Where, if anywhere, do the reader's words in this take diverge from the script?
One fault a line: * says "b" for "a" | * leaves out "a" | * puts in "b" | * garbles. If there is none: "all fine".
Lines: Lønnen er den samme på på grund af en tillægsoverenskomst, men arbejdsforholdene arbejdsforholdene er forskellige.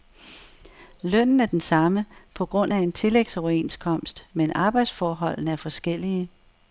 * leaves out "på"
* leaves out "arbejdsforholdene"